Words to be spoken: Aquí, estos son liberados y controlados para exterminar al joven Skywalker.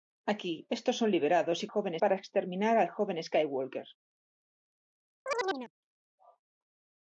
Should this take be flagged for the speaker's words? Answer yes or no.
yes